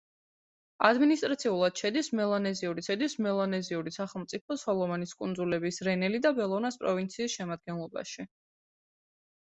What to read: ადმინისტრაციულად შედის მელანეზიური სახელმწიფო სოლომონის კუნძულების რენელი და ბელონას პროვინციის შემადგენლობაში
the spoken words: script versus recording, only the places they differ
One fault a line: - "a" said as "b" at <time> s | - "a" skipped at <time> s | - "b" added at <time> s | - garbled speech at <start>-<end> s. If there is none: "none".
- "შედის მელანეზიური" added at 2.9 s